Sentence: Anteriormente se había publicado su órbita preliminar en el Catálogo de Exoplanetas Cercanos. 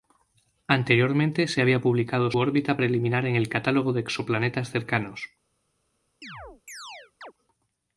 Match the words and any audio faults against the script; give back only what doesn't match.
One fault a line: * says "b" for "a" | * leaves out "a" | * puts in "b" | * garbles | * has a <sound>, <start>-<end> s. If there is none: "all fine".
* leaves out "su"
* has a chirp, 6.2-7.3 s